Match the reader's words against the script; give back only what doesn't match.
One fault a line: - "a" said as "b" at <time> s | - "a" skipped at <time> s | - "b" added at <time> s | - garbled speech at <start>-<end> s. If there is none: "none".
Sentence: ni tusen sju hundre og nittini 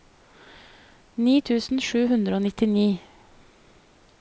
none